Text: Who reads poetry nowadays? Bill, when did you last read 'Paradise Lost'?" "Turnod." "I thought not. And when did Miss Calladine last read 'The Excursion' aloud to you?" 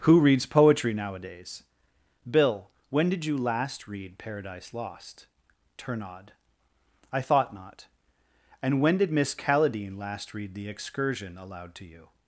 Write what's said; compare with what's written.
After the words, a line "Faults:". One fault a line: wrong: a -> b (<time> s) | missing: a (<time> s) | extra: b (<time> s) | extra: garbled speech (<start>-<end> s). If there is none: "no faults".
Who reads poetry nowadays? Bill, when did you last read 'Paradise Lost'?" "Turnod." "I thought not. And when did Miss Calladine last read 'The Excursion' aloud to you?"
Faults:
no faults